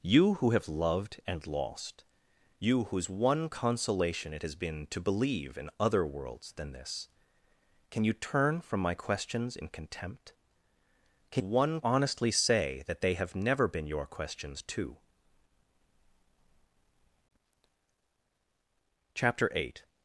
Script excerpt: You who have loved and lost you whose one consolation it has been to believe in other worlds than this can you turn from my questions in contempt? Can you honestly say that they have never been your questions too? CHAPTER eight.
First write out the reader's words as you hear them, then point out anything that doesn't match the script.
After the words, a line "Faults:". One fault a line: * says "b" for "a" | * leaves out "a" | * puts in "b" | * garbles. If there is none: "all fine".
You who have loved and lost you whose one consolation it has been to believe in other worlds than this can you turn from my questions in contempt? Can one honestly say that they have never been your questions too? CHAPTER eight.
Faults:
* says "one" for "you"